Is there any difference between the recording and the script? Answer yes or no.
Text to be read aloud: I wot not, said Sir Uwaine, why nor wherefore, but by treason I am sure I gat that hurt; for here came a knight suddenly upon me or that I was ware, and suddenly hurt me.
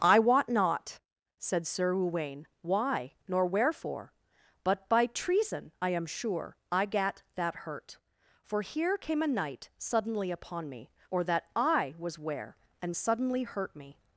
no